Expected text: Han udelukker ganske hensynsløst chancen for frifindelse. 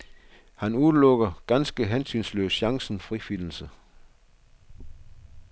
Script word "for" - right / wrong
wrong